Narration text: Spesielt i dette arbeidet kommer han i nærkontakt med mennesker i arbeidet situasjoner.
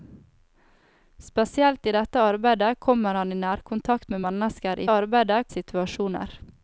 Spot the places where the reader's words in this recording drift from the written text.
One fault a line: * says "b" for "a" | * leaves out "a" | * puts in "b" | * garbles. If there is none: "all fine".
all fine